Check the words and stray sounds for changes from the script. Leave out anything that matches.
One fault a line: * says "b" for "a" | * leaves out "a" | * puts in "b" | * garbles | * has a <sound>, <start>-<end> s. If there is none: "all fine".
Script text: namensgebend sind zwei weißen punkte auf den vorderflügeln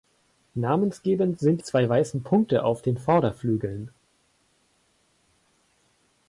all fine